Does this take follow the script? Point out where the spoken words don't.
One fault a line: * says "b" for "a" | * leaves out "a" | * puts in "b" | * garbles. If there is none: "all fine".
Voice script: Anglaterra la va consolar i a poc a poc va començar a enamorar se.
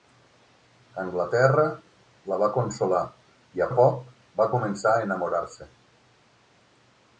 * leaves out "poc"